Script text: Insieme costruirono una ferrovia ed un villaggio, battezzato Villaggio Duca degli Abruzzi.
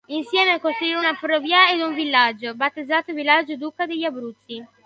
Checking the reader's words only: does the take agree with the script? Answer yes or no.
yes